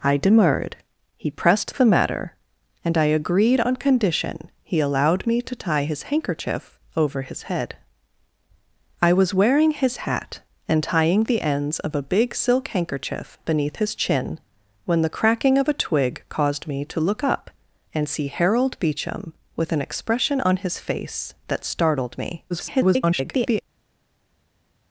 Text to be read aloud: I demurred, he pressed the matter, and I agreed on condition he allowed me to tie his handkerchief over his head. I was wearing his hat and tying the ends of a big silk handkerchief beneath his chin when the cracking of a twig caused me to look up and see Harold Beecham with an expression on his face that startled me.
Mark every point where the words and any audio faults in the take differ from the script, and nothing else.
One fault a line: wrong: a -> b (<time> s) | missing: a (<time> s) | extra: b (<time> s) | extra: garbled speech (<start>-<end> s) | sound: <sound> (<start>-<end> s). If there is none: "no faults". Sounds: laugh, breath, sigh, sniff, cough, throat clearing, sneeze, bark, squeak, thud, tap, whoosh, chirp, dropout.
extra: garbled speech (22.5-23.6 s)